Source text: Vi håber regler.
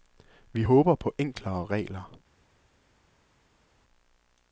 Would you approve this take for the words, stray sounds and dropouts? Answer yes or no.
no